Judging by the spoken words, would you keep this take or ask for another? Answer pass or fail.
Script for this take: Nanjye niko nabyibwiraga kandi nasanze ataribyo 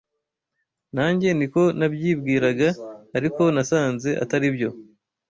fail